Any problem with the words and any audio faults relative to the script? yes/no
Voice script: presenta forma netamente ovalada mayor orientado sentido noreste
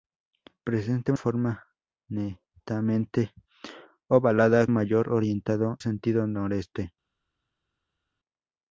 no